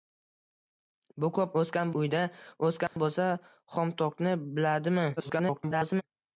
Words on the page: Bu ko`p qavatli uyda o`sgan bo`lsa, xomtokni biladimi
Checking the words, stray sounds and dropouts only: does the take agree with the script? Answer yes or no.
no